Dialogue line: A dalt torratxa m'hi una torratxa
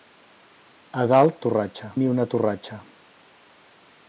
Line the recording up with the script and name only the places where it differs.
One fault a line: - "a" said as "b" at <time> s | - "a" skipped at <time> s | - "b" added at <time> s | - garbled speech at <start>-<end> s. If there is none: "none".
none